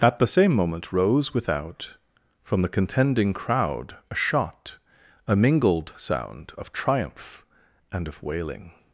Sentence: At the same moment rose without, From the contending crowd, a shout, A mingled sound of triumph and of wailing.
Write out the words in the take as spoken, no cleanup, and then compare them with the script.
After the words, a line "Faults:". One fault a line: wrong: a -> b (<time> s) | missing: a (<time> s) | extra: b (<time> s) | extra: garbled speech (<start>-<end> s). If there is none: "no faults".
At the same moment rose without, From the contending crowd, a shot, A mingled sound of triumph and of wailing.
Faults:
wrong: shout -> shot (4.2 s)